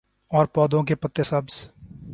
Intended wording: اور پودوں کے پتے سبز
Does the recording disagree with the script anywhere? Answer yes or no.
no